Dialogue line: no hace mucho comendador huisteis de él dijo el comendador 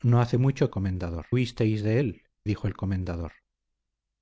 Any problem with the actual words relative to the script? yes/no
no